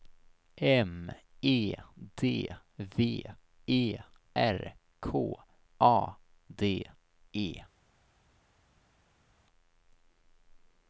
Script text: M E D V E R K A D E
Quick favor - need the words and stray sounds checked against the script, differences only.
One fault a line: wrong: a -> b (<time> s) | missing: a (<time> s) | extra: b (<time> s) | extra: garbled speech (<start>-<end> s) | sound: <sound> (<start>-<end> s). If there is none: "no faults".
no faults